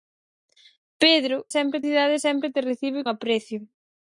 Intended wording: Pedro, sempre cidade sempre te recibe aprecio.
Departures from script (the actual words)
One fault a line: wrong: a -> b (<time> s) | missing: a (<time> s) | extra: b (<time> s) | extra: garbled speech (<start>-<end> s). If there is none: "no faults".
no faults